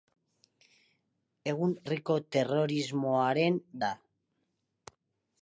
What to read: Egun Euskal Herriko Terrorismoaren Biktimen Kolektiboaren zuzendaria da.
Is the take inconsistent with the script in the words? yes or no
yes